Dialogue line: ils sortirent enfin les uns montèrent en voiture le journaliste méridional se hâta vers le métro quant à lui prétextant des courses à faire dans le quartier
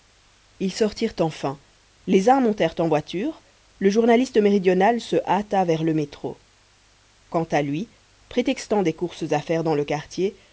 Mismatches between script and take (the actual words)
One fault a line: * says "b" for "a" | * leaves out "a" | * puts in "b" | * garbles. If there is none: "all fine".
all fine